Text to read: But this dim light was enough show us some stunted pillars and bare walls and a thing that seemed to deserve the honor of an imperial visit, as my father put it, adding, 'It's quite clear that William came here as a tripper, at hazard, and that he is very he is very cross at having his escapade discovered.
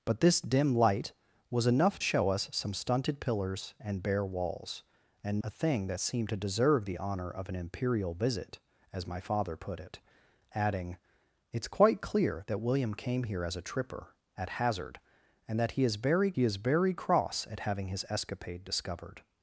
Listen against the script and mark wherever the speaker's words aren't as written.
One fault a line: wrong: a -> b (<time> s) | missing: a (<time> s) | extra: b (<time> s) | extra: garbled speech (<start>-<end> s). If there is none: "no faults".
no faults